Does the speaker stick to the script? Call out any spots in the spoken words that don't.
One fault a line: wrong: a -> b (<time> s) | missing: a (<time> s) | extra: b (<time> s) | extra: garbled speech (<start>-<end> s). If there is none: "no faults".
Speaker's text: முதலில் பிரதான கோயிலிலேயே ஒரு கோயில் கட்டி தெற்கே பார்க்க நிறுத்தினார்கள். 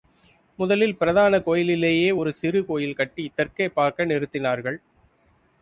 extra: சிறு (2.3 s)